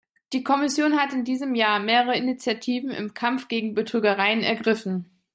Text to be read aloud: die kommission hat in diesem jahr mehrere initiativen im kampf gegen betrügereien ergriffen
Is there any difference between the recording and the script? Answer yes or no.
no